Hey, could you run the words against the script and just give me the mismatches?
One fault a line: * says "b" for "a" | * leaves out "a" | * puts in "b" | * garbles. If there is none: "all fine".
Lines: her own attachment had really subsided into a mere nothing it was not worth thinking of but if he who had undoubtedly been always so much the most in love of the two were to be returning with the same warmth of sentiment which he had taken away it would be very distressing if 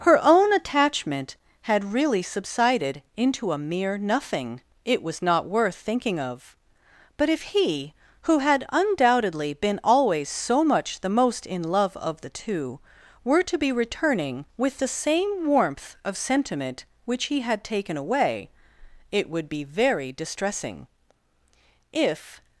all fine